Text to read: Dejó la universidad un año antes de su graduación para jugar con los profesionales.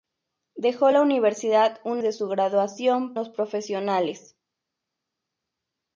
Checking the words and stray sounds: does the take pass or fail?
fail